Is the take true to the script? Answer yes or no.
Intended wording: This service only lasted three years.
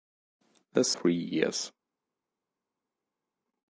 no